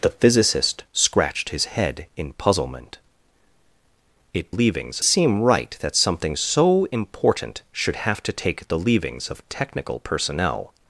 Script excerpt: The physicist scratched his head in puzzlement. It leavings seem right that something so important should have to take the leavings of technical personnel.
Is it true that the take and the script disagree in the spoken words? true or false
false